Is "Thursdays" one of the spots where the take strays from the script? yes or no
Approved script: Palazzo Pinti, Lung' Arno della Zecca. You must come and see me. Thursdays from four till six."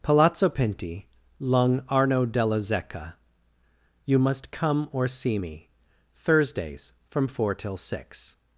no